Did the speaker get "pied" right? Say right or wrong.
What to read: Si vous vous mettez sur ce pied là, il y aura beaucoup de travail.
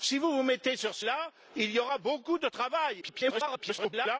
wrong